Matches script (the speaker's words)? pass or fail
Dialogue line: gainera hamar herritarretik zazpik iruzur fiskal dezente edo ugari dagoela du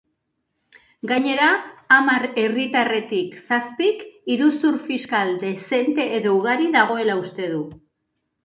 fail